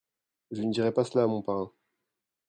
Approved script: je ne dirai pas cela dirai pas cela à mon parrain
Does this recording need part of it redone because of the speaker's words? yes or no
yes